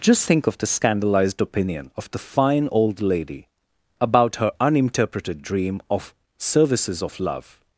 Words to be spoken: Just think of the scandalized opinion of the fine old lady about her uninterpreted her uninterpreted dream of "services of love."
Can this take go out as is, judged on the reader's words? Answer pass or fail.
fail